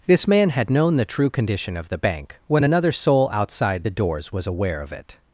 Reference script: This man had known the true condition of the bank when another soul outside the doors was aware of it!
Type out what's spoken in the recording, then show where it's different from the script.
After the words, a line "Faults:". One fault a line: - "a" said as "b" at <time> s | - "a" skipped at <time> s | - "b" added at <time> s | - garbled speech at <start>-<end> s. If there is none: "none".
This man had known the true condition of the bank when another soul outside the doors was aware of it!
Faults:
none